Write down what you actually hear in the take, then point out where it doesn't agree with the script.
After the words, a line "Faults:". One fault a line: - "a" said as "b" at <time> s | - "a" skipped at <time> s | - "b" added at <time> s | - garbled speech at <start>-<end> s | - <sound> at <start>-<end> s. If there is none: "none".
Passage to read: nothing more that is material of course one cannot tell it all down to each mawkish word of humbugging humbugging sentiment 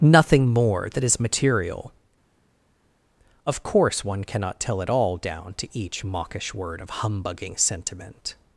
nothing more that is material of course one cannot tell it all down to each mawkish word of humbugging sentiment
Faults:
- "humbugging" skipped at 7.6 s